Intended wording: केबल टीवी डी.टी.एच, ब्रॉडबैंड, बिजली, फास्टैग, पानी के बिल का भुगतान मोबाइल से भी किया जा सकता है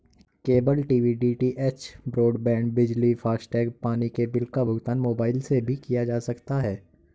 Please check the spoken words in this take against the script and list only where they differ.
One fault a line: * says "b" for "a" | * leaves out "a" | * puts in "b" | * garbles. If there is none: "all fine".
all fine